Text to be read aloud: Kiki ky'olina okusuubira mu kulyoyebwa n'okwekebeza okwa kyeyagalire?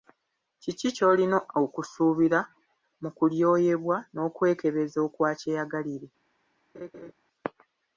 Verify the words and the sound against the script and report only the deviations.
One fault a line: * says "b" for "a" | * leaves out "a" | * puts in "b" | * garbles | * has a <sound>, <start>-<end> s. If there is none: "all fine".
* has a laugh, 6.7-7.1 s